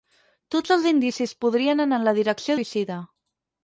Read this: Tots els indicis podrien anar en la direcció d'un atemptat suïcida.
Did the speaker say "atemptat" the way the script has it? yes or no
no